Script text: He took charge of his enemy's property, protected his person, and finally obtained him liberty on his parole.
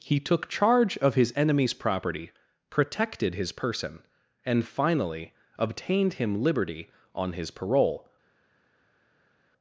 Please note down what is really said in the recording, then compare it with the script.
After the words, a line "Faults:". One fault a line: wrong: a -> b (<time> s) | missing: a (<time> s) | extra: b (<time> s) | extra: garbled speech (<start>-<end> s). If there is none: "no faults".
He took charge of his enemy's property, protected his person, and finally obtained him liberty on his parole.
Faults:
no faults